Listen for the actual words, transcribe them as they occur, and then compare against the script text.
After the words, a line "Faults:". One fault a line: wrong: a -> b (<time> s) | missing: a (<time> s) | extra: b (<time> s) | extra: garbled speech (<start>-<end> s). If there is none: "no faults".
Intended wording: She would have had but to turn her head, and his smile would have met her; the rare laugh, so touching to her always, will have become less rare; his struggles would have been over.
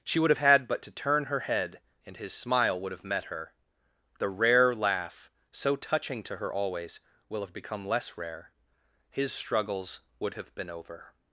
She would have had but to turn her head, and his smile would have met her; the rare laugh, so touching to her always, will have become less rare; his struggles would have been over.
Faults:
no faults